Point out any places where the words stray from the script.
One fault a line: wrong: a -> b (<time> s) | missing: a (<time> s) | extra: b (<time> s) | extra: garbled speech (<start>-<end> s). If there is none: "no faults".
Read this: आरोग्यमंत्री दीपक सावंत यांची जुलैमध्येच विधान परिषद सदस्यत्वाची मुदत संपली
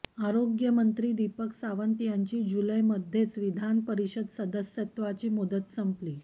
no faults